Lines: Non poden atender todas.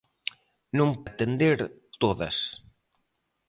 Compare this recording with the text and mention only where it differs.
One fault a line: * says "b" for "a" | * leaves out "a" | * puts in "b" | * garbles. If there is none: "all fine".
* leaves out "poden"